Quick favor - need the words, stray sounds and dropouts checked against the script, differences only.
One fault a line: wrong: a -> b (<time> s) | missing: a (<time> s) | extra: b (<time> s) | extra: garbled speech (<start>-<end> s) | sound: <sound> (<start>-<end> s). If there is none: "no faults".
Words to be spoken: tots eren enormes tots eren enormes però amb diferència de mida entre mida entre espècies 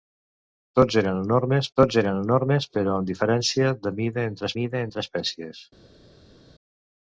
no faults